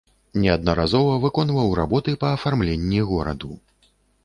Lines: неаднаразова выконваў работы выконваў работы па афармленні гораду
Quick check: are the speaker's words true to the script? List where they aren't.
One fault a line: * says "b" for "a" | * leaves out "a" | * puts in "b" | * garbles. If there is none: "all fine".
* leaves out "выконваў работы"